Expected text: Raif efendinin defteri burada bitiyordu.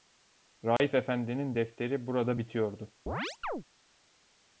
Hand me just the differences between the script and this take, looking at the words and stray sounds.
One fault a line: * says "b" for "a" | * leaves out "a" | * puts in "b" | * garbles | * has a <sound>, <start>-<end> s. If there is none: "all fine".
* has a dropout, 0.8-0.8 s
* has a chirp, 3.1-3.6 s